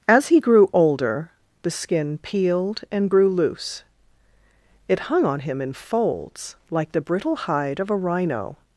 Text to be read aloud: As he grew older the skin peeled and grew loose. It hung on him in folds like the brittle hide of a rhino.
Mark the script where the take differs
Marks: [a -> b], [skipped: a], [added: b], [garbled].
As he grew older the skin peeled and grew loose. It hung on him in folds like the brittle hide of a rhino.